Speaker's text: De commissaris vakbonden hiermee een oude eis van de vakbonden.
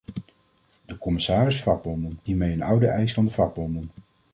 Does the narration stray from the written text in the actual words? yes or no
no